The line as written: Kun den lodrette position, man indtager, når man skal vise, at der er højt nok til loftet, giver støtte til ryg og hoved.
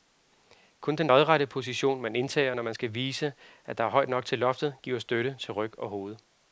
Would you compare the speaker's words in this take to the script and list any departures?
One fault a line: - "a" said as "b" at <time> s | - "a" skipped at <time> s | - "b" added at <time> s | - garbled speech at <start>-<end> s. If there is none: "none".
none